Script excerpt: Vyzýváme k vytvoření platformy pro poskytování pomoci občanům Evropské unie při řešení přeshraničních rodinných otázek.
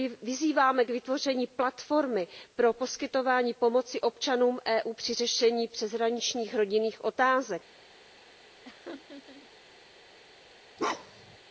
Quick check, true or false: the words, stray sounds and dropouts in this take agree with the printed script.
false